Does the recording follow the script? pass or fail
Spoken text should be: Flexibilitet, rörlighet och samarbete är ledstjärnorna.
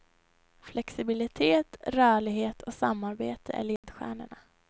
pass